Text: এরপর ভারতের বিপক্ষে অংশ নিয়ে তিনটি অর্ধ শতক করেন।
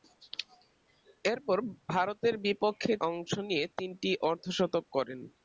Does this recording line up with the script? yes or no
yes